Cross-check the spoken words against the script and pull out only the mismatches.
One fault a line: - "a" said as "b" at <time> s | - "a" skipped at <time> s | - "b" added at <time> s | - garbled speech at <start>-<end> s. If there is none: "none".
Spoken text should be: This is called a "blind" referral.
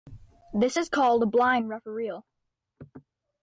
none